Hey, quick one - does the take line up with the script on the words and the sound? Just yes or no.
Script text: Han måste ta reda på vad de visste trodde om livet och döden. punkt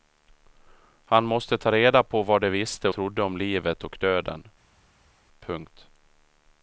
yes